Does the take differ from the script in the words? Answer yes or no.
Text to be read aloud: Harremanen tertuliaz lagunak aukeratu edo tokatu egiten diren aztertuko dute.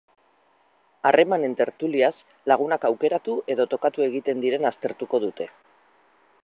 no